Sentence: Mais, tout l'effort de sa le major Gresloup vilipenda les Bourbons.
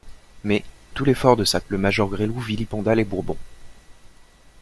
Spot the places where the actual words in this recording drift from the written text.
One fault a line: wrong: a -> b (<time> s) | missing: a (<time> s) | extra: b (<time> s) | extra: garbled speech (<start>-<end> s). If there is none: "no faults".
no faults